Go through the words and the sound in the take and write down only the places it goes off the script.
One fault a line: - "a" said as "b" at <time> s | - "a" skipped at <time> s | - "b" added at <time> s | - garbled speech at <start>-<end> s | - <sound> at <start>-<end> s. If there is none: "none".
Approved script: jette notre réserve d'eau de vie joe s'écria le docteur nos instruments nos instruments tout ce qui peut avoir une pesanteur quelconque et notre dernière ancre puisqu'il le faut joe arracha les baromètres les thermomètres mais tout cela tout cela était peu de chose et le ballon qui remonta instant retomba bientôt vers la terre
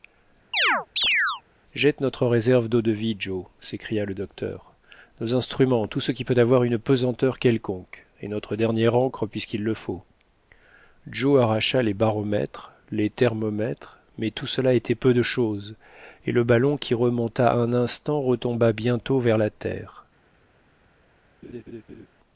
- chirp at 0.5-1.4 s
- "nos instruments" skipped at 5.9 s
- "tout cela" skipped at 14.7 s
- "un" added at 17.5 s
- laugh at 21.4-22.1 s